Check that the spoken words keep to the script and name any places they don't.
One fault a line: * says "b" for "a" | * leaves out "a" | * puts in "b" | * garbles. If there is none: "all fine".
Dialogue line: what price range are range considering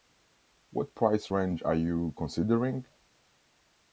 * says "you" for "range"